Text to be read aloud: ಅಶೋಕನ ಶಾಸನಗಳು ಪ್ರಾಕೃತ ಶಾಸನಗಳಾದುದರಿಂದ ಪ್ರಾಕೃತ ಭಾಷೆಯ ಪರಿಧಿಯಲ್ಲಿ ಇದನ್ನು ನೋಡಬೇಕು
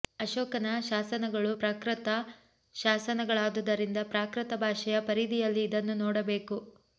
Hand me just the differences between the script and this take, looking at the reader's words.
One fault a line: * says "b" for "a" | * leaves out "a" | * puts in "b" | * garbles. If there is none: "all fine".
all fine